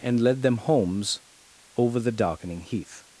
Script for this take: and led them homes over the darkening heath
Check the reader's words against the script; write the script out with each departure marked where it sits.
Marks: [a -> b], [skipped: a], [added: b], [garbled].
and led them homes over the darkening heath